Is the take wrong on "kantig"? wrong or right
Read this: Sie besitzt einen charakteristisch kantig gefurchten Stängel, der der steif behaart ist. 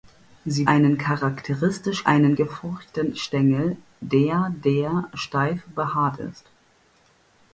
wrong